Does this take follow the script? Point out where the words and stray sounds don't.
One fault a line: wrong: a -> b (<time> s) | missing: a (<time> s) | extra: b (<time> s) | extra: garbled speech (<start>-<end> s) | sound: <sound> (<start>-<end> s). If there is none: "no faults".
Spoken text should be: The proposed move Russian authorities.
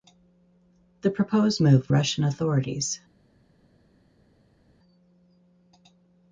no faults